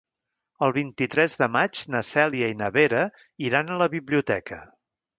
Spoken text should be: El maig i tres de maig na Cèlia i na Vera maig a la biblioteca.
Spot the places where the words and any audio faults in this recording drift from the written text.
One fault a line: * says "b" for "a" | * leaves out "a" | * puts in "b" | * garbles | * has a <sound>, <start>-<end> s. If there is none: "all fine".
* says "vint" for "maig"
* says "iran" for "maig"